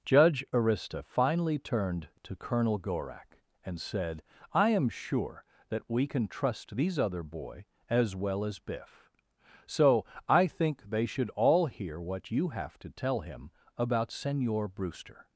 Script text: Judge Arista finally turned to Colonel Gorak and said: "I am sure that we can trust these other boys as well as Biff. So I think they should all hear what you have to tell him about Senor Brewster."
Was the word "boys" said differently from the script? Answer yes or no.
yes